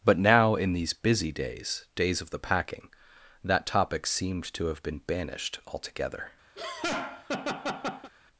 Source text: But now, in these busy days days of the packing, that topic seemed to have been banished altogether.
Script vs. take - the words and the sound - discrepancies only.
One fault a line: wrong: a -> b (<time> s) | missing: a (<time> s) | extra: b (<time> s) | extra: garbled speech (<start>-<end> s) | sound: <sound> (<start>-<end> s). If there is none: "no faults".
sound: laugh (6.6-8.1 s)